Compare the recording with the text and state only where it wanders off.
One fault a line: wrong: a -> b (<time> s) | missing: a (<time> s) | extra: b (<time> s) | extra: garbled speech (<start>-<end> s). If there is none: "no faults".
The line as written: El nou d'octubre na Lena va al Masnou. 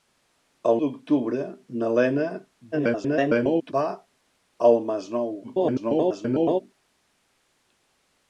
missing: nou (0.8 s)
extra: garbled speech (2.7-3.7 s)
extra: garbled speech (5.4-6.6 s)